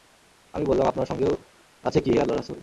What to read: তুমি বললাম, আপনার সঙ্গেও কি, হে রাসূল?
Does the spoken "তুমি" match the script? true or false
false